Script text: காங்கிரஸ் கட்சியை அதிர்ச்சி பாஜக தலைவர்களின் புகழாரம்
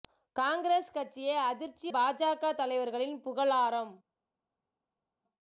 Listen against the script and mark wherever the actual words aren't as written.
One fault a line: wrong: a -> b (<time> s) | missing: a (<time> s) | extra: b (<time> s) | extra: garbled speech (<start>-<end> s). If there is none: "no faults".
no faults